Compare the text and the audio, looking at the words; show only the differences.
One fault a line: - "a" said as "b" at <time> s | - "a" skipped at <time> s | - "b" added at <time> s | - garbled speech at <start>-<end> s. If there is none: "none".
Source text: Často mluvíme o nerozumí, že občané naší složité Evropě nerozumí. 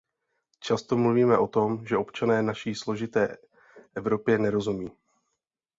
- "nerozumí" said as "tom" at 1.5 s